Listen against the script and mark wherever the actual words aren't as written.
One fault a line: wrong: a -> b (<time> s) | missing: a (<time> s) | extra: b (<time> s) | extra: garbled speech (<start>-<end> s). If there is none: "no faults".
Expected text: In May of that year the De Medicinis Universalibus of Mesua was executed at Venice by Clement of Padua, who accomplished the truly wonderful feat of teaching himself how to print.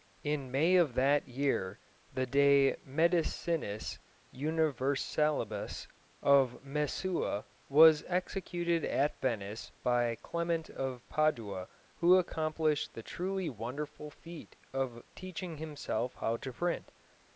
no faults